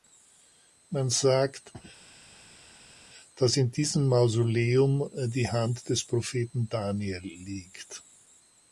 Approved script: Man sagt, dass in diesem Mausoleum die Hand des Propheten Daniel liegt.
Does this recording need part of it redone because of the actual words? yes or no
no